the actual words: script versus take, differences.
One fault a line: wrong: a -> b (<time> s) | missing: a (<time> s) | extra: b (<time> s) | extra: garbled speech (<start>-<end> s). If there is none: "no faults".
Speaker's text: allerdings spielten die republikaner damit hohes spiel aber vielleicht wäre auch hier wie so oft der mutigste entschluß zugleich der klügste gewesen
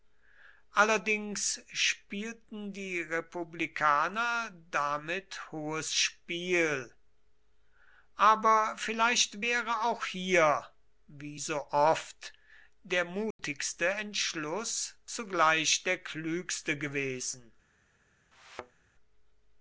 no faults